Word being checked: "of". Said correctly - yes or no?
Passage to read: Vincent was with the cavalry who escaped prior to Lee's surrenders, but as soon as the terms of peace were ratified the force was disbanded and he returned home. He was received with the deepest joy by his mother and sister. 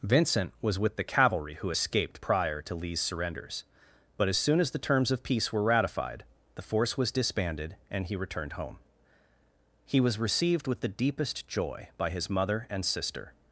yes